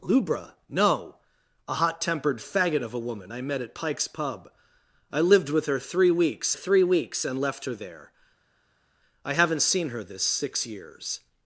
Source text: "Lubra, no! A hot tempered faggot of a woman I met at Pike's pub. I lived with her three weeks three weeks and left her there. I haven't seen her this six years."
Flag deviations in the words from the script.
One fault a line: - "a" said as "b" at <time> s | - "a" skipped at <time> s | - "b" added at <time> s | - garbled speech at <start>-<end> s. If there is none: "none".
none